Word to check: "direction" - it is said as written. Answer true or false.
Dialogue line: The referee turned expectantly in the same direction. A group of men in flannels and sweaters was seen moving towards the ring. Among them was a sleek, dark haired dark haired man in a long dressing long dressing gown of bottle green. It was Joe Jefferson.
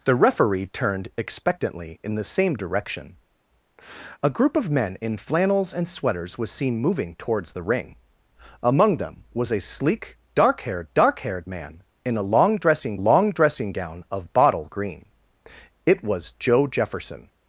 true